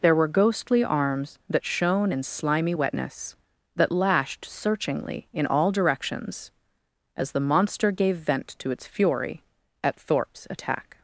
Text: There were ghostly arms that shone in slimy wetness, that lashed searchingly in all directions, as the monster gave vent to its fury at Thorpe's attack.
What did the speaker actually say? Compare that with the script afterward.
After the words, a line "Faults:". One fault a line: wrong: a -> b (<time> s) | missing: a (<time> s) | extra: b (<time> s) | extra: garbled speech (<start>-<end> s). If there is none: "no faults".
There were ghostly arms that shone in slimy wetness, that lashed searchingly in all directions, as the monster gave vent to its fury at Thorpe's attack.
Faults:
no faults